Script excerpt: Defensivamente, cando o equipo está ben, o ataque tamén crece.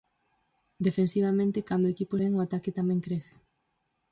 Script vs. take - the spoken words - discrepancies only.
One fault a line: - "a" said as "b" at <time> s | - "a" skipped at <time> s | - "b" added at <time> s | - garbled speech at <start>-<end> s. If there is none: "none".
- "está" skipped at 2.1 s